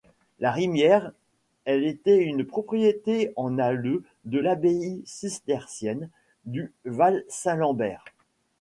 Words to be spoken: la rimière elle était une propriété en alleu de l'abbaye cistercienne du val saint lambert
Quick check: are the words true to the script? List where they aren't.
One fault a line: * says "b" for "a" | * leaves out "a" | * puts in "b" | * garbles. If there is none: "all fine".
all fine